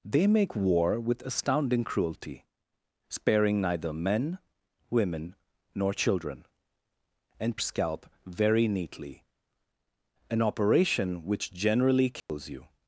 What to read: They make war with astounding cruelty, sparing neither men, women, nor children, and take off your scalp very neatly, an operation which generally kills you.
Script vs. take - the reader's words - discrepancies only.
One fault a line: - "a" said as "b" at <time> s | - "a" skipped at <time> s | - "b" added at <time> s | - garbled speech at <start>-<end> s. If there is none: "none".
- "take off your" skipped at 7.6 s